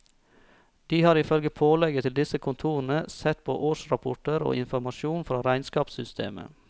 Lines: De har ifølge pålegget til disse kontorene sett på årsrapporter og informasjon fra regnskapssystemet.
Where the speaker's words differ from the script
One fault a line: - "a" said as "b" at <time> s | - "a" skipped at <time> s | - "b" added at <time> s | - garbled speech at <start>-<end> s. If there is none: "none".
none